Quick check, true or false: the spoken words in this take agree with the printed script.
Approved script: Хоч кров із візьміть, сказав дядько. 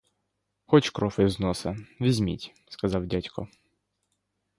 false